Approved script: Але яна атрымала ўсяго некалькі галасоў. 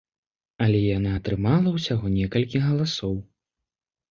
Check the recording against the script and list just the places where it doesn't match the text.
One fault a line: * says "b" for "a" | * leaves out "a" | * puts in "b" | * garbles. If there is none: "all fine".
all fine